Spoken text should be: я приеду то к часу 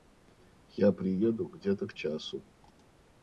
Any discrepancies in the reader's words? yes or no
yes